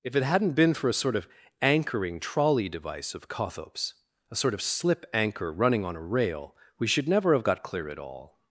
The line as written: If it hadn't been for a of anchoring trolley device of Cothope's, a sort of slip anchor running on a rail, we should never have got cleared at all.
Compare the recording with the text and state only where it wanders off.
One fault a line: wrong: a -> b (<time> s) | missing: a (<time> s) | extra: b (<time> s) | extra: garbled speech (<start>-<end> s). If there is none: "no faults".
extra: sort (0.9 s)
wrong: cleared -> clear (7.6 s)